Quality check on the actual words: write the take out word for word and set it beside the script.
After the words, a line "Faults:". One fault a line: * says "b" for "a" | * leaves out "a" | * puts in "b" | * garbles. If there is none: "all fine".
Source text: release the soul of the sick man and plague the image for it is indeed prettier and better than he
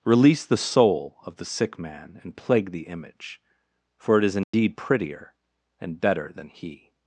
release the soul of the sick man and plague the image for it is indeed prettier and better than he
Faults:
all fine